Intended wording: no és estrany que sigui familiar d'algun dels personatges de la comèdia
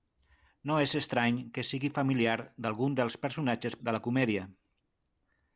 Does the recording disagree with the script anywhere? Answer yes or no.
no